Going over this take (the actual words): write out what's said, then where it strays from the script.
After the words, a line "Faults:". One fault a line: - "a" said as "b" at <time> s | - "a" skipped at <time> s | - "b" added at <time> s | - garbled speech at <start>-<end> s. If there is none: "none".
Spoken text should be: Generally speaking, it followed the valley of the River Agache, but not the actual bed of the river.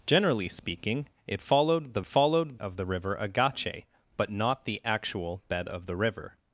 Generally speaking, it followed the followed of the River Agache, but not the actual bed of the river.
Faults:
- "valley" said as "followed" at 2.0 s